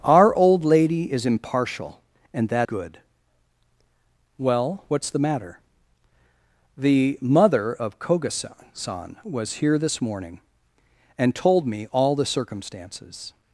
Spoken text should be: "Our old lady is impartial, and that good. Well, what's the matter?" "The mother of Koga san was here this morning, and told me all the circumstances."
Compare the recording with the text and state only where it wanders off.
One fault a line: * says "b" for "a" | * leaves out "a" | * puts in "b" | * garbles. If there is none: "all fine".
all fine